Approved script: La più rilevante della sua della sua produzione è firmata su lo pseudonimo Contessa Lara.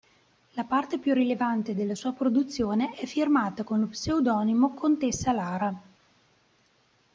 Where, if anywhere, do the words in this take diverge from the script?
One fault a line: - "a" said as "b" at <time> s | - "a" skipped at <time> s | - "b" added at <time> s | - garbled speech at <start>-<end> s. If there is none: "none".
- "parte" added at 0.6 s
- "della sua" skipped at 2.1 s
- "su" said as "con" at 3.6 s